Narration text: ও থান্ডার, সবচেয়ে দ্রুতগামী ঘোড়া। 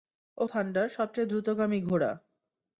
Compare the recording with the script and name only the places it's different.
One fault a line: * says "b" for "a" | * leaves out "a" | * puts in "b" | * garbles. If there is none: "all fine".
all fine